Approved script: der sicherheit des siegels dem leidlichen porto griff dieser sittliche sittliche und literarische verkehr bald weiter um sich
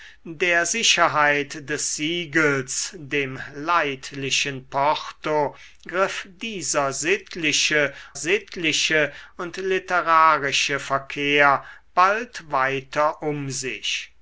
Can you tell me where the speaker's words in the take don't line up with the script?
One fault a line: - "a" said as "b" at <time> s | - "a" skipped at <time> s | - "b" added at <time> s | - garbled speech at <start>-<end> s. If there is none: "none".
none